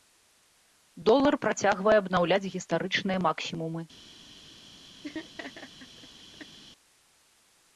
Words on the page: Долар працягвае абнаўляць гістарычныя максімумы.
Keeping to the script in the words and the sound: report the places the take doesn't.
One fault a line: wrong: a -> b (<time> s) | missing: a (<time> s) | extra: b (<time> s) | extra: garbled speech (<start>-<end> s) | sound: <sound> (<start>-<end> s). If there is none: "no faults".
sound: laugh (5.0-6.6 s)